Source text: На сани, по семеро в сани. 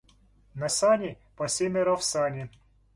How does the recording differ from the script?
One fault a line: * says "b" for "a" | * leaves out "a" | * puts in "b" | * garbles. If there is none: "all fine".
all fine